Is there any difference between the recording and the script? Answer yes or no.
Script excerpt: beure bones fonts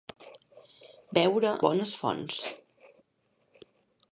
no